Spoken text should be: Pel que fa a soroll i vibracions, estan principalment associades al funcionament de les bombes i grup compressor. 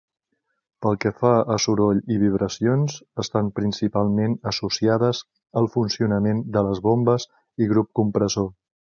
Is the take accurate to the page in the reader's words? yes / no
yes